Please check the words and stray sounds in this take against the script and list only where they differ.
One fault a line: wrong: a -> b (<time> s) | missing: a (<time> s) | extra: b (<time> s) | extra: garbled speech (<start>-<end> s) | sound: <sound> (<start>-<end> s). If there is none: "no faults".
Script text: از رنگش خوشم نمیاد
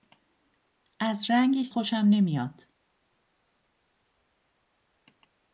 no faults